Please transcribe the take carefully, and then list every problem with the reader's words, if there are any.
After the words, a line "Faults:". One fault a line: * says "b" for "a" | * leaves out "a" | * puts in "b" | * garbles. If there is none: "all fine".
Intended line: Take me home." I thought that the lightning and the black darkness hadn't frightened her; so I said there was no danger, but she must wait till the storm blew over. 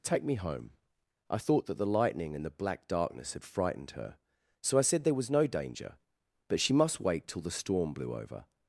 Take me home." I thought that the lightning and the black darkness had frightened her; so I said there was no danger, but she must wait till the storm blew over.
Faults:
* says "had" for "hadn't"